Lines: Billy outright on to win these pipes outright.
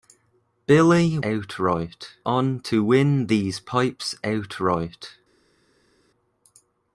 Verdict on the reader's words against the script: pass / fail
pass